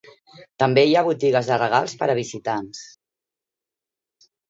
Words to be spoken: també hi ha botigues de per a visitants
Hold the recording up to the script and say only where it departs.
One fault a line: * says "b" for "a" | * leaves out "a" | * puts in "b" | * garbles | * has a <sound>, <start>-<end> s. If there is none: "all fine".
* puts in "regals"